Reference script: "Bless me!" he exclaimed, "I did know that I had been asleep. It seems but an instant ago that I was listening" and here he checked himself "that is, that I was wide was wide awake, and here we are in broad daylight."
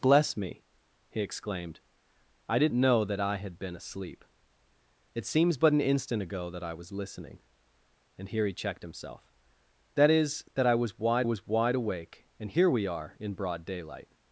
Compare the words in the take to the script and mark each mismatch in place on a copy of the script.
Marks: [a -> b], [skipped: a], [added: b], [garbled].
"Bless me!" he exclaimed, "I did know that I had been asleep. It seems but an instant ago that I was listening" and here he checked himself "that is, that I was wide was wide awake, and here we are in broad daylight."